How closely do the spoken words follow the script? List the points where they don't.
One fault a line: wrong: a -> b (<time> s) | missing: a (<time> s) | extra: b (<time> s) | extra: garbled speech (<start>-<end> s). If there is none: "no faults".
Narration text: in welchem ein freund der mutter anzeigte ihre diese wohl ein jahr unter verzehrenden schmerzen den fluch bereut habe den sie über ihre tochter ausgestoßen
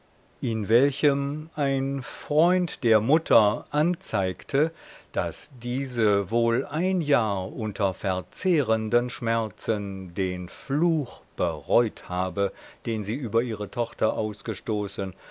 wrong: ihre -> daß (5.1 s)